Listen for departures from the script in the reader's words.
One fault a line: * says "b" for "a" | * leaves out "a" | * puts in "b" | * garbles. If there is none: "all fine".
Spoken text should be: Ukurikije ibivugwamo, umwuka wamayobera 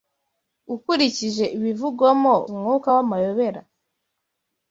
all fine